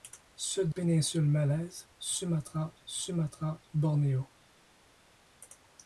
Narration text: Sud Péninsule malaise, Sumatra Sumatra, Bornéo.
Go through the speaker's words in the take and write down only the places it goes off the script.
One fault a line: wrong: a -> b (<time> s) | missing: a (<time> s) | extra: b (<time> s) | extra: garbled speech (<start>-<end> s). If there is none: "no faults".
no faults